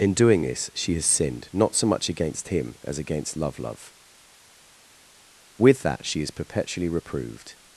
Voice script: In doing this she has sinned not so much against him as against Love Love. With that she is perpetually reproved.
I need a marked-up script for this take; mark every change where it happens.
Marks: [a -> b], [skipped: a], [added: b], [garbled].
In doing this she has sinned not so much against him as against Love Love. With that she is perpetually reproved.